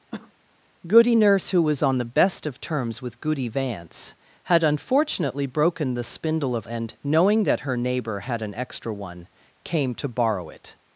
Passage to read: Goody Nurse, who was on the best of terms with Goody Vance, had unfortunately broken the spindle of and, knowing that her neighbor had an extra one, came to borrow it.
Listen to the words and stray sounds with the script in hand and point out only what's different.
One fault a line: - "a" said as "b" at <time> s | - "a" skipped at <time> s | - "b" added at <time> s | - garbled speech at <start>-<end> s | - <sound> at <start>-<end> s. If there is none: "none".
- cough at 0.1-0.3 s